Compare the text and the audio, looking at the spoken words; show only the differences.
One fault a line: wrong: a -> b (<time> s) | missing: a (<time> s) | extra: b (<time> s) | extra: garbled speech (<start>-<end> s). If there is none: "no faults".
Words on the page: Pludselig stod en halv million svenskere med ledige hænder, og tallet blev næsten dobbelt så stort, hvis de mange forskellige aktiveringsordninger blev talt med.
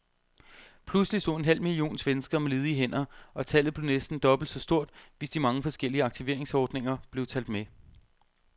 no faults